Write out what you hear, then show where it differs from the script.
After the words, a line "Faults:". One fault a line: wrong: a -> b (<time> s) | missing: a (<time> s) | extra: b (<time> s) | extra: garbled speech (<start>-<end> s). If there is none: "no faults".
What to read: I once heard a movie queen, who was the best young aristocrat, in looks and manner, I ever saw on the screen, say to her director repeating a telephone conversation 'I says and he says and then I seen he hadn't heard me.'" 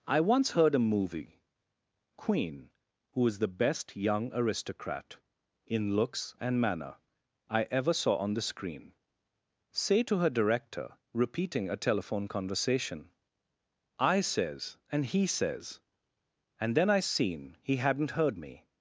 I once heard a movie queen, who is the best young aristocrat, in looks and manner, I ever saw on the screen, say to her director repeating a telephone conversation 'I says and he says and then I seen he hadn't heard me.'"
Faults:
wrong: was -> is (3.3 s)